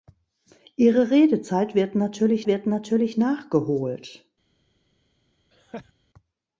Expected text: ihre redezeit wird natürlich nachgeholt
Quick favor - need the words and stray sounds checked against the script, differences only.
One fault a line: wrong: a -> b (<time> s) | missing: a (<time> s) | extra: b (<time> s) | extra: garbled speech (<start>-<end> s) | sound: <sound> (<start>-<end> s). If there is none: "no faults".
extra: wird natürlich (2.5 s)
sound: laugh (5.5-5.9 s)